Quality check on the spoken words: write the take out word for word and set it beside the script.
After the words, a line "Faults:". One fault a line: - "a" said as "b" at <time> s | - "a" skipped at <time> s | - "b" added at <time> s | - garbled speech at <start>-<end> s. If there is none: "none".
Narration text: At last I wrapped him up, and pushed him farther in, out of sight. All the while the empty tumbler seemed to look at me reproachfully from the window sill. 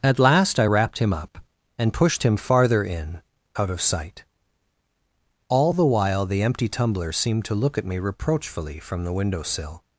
At last I wrapped him up, and pushed him farther in, out of sight. All the while the empty tumbler seemed to look at me reproachfully from the window sill.
Faults:
none